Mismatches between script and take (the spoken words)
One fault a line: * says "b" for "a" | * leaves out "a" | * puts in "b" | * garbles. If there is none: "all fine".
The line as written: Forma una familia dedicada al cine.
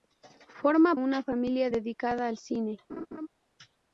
all fine